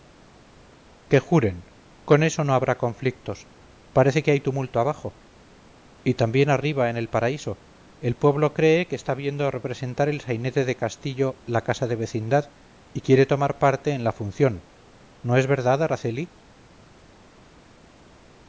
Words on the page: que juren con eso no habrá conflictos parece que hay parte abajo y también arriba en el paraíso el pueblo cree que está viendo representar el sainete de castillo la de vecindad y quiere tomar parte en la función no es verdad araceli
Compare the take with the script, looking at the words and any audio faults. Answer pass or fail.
fail